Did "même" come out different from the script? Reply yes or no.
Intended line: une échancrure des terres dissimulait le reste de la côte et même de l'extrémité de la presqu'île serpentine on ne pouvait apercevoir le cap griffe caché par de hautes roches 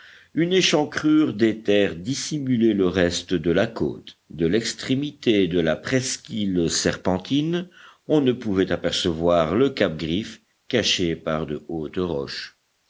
yes